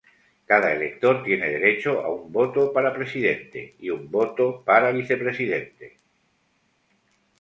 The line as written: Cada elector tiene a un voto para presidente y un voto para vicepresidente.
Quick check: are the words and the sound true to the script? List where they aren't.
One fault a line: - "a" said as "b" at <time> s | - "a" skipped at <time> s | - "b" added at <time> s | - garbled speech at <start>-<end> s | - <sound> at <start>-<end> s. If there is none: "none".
- "derecho" added at 1.5 s